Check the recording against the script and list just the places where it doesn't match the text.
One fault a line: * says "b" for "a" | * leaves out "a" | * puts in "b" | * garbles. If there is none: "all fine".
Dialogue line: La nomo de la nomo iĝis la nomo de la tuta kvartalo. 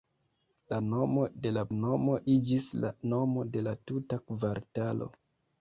all fine